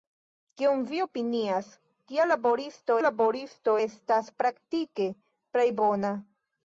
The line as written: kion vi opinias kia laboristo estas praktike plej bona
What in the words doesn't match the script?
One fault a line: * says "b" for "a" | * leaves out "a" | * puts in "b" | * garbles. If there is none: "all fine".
* puts in "laboristo"